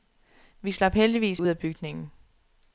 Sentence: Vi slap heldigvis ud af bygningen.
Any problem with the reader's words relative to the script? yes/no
no